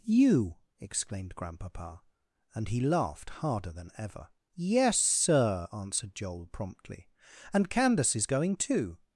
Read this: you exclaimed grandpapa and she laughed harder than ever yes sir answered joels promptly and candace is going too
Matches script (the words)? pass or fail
fail